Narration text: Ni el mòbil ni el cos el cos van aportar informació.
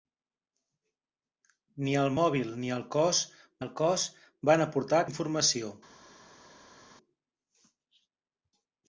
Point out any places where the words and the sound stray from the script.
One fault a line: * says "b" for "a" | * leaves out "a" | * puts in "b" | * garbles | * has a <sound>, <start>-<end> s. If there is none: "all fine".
all fine